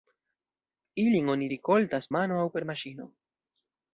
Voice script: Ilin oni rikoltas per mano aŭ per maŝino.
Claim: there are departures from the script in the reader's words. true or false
true